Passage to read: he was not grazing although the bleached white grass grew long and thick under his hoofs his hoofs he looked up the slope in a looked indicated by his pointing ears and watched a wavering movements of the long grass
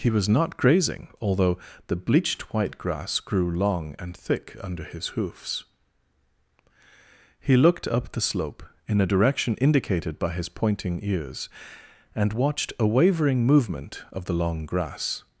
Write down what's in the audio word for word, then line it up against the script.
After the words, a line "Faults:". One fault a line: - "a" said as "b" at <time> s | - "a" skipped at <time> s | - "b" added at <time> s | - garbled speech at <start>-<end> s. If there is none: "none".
he was not grazing although the bleached white grass grew long and thick under his hoofs he looked up the slope in a direction indicated by his pointing ears and watched a wavering movement of the long grass
Faults:
- "his hoofs" skipped at 5.7 s
- "looked" said as "direction" at 9.1 s
- "movements" said as "movement" at 13.4 s